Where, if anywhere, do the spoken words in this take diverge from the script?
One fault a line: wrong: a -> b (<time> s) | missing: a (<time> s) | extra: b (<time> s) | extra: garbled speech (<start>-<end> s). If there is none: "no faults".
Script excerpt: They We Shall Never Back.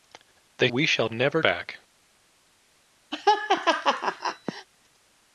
no faults